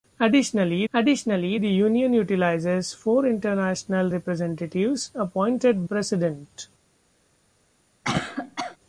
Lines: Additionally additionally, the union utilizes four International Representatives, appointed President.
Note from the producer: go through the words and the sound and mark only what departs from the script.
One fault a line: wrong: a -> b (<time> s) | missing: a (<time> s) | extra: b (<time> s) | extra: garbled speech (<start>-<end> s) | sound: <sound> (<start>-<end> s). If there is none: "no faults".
sound: cough (8.0-8.8 s)